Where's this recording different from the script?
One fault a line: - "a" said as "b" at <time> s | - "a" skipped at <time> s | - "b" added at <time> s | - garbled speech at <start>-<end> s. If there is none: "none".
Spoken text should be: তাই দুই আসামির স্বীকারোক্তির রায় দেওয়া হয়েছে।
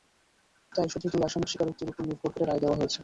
- "শুধু" added at 0.9 s
- "ওপর নির্ভর করে" added at 1.9 s